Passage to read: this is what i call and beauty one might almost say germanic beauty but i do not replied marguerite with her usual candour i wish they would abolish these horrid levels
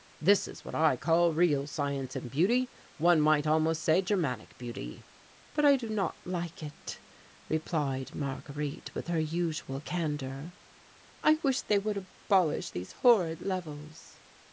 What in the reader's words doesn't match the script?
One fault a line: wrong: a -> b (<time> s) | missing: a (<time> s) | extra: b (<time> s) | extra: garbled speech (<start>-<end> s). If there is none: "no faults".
extra: real science (1.3 s)
extra: like it (6.2 s)